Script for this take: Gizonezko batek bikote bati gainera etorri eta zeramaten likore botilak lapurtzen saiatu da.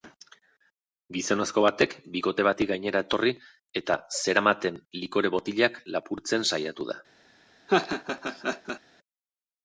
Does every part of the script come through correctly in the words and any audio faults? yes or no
no